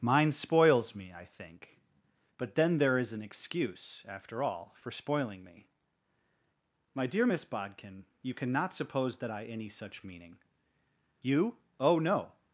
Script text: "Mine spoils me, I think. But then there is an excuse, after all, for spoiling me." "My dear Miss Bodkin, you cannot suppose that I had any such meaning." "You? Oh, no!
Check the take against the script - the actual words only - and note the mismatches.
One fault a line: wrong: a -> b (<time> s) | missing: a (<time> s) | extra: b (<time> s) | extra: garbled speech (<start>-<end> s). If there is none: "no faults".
missing: had (9.4 s)